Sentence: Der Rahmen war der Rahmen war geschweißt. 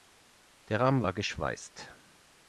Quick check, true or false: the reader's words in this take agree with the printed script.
false